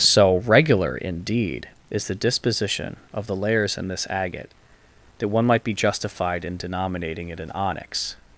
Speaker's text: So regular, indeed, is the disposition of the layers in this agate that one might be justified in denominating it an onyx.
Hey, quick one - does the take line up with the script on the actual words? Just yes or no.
yes